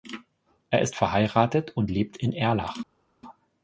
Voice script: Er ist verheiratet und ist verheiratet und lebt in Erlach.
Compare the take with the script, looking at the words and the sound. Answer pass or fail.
fail